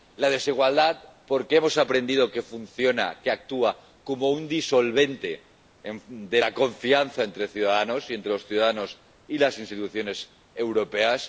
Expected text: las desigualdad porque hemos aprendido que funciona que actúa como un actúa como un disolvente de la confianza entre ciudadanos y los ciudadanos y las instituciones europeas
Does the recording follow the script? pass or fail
fail